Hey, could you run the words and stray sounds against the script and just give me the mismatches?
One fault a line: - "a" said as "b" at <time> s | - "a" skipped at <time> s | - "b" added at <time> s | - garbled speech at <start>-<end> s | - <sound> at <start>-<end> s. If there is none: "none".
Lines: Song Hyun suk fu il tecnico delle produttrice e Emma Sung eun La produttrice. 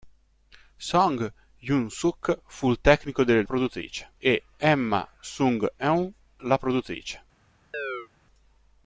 - chirp at 7.7-8.1 s